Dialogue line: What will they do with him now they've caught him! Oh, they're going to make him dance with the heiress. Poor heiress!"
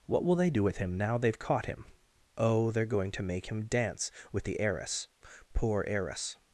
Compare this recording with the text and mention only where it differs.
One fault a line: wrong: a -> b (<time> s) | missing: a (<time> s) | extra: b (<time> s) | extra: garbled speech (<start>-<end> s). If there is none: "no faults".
no faults